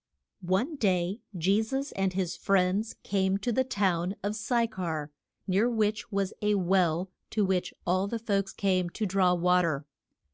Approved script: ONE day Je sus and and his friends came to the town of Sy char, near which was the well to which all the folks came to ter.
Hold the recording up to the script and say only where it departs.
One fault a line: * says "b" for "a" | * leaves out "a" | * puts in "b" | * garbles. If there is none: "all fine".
* leaves out "and"
* says "a" for "the"
* puts in "draw wa"